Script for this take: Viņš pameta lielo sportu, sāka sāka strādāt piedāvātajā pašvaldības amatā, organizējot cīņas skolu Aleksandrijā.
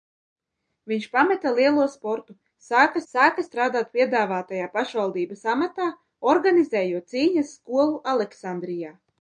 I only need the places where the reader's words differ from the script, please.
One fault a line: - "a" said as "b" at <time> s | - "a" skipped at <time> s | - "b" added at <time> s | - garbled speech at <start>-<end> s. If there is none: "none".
none